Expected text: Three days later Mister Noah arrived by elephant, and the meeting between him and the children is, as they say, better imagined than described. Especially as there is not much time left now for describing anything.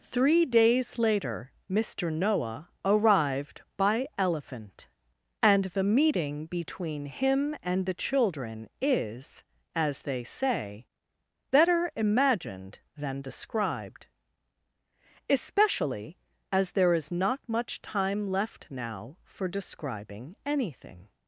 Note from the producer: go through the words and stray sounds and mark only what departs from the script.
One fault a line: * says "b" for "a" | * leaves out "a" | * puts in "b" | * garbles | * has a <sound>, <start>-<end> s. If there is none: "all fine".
all fine